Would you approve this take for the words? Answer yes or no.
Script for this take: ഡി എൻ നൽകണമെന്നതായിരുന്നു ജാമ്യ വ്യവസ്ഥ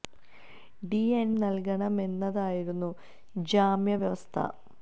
yes